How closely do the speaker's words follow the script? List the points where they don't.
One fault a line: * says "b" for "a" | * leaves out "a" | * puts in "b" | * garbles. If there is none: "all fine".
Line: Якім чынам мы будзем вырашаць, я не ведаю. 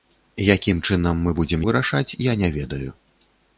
all fine